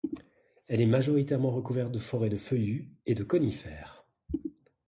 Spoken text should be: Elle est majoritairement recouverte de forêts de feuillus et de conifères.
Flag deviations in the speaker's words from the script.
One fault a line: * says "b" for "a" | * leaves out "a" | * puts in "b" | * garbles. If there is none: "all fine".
all fine